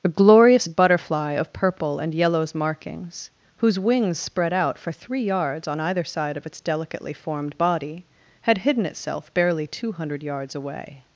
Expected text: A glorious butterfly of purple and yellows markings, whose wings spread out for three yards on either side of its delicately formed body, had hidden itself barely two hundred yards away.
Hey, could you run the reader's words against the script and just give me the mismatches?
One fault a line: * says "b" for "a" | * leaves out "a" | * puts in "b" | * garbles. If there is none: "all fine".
all fine